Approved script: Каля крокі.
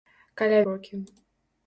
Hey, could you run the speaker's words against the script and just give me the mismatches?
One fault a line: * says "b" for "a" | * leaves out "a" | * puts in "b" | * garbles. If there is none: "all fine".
all fine